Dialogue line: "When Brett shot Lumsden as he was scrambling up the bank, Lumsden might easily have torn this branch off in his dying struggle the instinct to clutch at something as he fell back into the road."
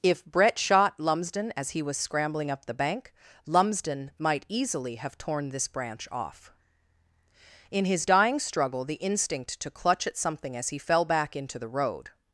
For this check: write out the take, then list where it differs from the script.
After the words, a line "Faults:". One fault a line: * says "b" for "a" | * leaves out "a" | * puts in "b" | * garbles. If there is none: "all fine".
"If Brett shot Lumsden as he was scrambling up the bank, Lumsden might easily have torn this branch off in his dying struggle the instinct to clutch at something as he fell back into the road."
Faults:
* says "If" for "When"